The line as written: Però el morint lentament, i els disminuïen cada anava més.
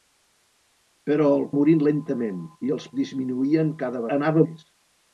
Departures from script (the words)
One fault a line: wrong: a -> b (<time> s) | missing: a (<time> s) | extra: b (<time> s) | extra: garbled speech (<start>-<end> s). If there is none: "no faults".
no faults